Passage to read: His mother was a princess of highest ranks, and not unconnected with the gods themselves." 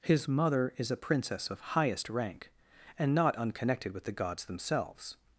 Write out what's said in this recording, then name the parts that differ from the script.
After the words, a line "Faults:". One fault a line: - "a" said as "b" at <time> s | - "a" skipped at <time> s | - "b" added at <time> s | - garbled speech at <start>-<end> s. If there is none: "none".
His mother is a princess of highest rank, and not unconnected with the gods themselves."
Faults:
- "was" said as "is" at 0.8 s
- "ranks" said as "rank" at 2.1 s